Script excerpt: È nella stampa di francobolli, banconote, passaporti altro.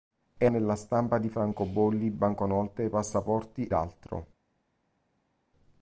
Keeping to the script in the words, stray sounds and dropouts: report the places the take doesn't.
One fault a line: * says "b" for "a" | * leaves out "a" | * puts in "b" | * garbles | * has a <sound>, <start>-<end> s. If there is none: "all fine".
all fine